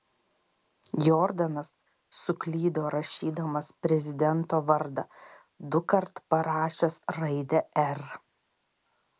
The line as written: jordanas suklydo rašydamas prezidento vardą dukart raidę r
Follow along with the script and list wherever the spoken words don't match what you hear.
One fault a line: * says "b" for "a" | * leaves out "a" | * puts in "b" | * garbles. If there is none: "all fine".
* puts in "parašęs"